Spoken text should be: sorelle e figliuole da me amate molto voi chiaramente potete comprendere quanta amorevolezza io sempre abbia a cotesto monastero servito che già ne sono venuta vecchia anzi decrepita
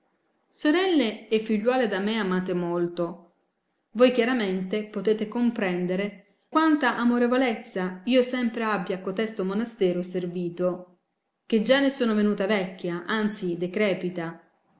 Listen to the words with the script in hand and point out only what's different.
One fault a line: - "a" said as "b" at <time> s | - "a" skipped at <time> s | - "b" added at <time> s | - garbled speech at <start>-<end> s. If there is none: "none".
none